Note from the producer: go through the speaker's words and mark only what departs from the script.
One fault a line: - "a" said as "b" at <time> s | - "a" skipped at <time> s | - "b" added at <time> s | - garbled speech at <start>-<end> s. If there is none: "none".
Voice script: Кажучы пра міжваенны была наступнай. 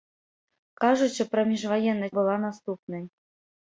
none